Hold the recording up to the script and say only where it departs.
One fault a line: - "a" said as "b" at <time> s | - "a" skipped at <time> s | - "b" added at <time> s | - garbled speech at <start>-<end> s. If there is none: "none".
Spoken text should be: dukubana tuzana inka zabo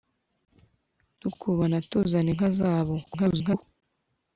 - garbled speech at 3.0-3.6 s